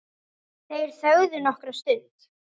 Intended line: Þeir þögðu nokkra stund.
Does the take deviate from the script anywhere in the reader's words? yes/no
no